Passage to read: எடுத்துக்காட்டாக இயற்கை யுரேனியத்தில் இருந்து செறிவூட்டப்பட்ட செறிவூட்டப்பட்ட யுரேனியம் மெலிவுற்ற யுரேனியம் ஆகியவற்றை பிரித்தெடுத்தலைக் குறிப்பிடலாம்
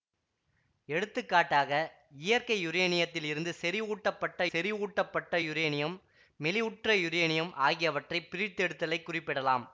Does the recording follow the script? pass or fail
pass